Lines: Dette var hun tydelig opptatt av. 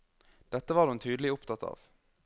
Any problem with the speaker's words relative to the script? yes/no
no